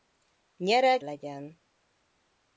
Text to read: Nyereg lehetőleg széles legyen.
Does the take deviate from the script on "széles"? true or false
true